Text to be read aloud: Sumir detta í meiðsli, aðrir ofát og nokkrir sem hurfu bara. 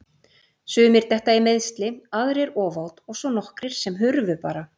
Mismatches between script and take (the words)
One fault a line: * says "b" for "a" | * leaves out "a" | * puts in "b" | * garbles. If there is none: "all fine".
* puts in "svo"